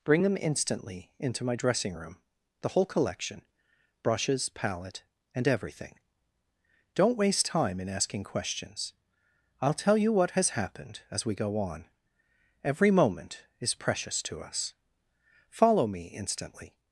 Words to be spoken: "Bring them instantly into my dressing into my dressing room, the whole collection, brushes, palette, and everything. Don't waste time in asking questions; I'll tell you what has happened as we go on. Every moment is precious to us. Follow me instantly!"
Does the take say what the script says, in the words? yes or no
no